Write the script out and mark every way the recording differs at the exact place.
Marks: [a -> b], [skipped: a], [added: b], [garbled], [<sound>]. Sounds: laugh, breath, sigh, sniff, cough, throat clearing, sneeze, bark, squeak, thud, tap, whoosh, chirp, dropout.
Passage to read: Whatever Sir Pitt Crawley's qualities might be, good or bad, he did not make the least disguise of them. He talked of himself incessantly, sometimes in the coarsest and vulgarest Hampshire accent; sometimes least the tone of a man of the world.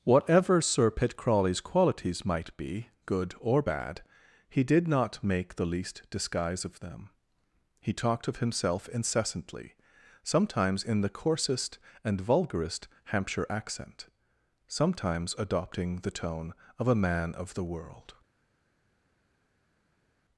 Whatever Sir Pitt Crawley's qualities might be, good or bad, he did not make the least disguise of them. He talked of himself incessantly, sometimes in the coarsest and vulgarest Hampshire accent; sometimes [least -> adopting] the tone of a man of the world.